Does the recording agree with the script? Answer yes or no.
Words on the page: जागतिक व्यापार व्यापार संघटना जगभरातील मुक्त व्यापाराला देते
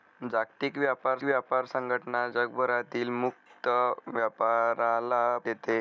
yes